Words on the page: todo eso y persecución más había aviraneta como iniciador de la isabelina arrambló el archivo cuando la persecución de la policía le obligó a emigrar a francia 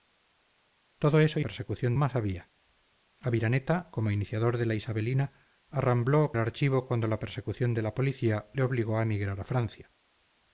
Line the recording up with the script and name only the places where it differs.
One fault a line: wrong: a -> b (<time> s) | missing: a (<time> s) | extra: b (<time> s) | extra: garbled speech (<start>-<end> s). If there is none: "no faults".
no faults